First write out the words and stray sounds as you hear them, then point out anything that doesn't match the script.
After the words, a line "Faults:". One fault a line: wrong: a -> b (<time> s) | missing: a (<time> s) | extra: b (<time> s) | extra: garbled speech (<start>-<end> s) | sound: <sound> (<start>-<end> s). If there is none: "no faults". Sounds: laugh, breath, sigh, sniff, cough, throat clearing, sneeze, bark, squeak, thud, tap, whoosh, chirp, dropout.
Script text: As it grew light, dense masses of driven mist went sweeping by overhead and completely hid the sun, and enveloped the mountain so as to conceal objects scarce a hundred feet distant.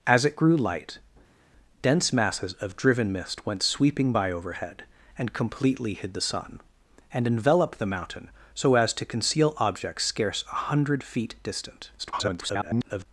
As it grew light, dense masses of driven mist went sweeping by overhead and completely hid the sun, and enveloped the mountain so as to conceal objects scarce a hundred feet distant. [garbled]
Faults:
extra: garbled speech (12.0-13.1 s)